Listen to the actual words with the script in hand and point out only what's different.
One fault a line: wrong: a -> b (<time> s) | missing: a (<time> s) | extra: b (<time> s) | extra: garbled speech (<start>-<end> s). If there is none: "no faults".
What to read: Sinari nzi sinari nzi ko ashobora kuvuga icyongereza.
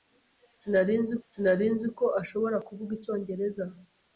no faults